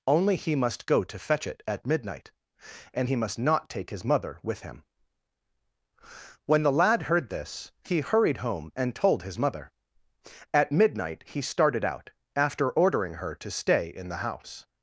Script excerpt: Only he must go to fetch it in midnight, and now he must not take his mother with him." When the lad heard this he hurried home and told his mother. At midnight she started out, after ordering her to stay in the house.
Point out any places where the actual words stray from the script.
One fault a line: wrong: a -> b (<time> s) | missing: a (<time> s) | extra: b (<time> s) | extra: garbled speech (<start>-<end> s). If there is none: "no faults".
wrong: in -> at (1.7 s)
missing: now (3.1 s)
wrong: she -> he (11.3 s)